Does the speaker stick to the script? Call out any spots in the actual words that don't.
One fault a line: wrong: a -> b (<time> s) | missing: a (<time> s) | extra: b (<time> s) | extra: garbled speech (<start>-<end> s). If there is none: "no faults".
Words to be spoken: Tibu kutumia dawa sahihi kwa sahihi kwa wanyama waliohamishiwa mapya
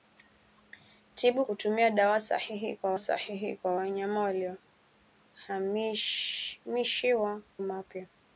no faults